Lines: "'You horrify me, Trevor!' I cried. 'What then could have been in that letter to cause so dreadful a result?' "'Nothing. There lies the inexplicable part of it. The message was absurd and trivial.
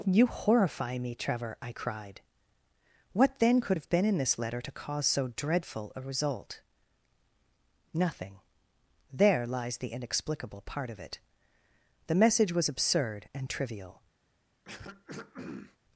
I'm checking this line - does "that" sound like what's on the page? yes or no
no